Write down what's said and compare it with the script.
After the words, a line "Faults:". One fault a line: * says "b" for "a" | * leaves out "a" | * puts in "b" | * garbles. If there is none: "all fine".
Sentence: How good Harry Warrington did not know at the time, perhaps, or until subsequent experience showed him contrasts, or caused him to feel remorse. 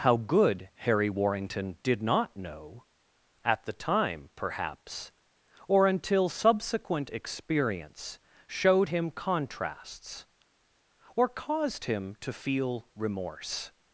How good Harry Warrington did not know at the time, perhaps, or until subsequent experience showed him contrasts, or caused him to feel remorse.
Faults:
all fine